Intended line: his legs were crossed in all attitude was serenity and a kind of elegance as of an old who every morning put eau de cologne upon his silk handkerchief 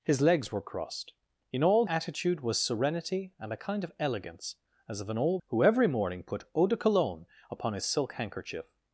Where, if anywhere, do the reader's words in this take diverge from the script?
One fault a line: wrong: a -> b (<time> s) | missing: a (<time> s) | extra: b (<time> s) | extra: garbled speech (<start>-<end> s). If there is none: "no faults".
no faults